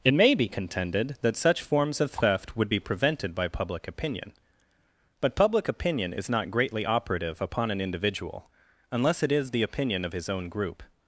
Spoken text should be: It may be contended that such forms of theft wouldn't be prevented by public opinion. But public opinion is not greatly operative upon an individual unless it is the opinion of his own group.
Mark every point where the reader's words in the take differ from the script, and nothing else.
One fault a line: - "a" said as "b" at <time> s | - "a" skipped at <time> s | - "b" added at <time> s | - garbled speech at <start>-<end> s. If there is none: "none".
- "wouldn't" said as "would" at 2.6 s